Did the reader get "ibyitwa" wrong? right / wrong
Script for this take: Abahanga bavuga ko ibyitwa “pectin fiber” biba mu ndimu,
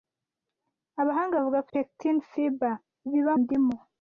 wrong